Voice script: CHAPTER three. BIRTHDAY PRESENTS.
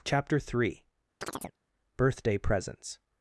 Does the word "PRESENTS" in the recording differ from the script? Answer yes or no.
no